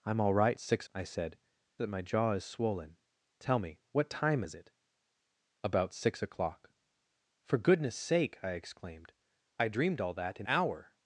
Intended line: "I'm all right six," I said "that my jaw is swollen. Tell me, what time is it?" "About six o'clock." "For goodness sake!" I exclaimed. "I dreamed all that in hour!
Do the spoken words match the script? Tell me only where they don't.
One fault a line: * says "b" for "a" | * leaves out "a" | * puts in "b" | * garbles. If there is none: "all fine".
all fine